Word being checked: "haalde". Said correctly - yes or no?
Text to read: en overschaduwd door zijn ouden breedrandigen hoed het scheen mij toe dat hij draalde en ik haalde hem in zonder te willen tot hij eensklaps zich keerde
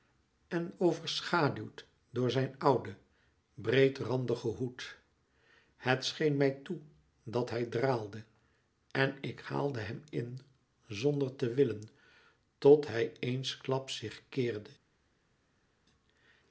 yes